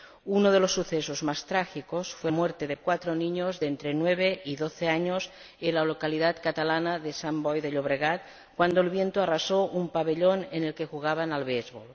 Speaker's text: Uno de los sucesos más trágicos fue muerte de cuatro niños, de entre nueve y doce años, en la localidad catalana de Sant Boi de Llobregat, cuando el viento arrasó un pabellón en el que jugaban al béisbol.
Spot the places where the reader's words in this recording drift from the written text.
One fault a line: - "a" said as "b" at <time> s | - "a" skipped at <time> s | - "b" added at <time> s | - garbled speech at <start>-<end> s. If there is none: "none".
none